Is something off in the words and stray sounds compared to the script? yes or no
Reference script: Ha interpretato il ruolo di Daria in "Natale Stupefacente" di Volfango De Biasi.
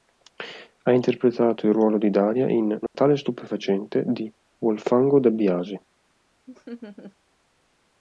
yes